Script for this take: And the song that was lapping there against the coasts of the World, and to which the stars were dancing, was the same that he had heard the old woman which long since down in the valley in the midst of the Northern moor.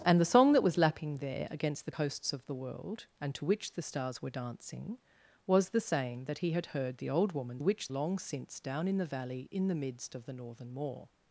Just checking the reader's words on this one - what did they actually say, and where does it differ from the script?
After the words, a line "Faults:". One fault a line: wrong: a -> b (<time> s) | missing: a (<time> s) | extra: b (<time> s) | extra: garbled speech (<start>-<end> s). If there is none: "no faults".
And the song that was lapping there against the coasts of the World, and to which the stars were dancing, was the same that he had heard the old woman which long since down in the valley in the midst of the Northern moor.
Faults:
no faults